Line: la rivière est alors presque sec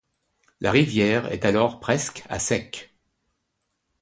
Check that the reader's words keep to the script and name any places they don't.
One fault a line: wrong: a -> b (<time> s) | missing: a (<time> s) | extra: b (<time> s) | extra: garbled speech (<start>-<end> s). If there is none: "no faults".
extra: à (2.3 s)